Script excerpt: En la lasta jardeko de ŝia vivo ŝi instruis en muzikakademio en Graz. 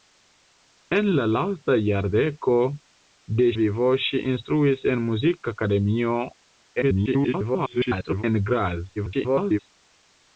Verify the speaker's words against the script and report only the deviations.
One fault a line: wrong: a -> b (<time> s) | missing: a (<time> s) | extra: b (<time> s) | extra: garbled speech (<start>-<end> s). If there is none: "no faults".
missing: ŝia (3.5 s)
extra: garbled speech (6.8-8.2 s)
extra: garbled speech (9.0-9.6 s)